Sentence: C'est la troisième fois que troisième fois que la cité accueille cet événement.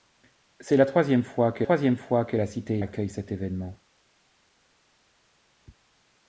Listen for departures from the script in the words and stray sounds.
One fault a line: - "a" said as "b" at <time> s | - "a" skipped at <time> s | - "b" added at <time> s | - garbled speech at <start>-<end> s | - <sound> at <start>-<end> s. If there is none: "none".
none